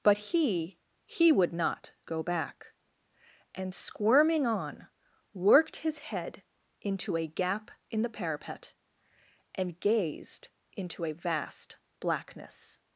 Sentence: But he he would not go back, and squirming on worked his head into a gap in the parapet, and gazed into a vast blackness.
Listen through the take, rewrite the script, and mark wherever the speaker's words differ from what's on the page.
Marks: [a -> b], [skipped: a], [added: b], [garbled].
But he he would not go back, and squirming on worked his head into a gap in the parapet, and gazed into a vast blackness.